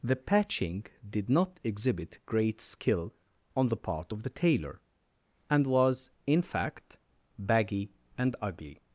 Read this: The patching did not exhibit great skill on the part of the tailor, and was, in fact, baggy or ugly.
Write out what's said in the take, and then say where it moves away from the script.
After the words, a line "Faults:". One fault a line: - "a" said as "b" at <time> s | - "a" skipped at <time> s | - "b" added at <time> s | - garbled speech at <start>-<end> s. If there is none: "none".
The patching did not exhibit great skill on the part of the tailor, and was, in fact, baggy and ugly.
Faults:
- "or" said as "and" at 8.2 s